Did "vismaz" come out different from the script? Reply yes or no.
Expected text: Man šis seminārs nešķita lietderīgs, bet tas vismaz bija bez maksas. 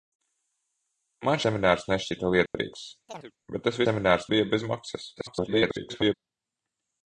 yes